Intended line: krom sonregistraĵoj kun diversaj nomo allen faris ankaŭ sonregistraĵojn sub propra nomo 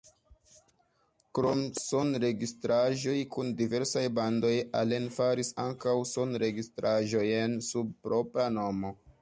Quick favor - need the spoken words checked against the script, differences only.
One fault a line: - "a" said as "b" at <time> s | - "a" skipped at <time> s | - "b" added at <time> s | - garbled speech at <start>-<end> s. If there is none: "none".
- "nomo" said as "bandoj" at 4.2 s